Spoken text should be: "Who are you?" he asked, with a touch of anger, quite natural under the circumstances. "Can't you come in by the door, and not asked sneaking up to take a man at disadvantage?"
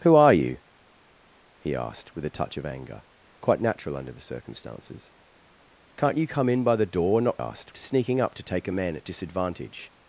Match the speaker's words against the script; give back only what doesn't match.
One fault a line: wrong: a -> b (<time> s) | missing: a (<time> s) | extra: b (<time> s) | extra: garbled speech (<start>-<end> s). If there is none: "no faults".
no faults